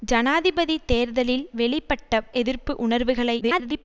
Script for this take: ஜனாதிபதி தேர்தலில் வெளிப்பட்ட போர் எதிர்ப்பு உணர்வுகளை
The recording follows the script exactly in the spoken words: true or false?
false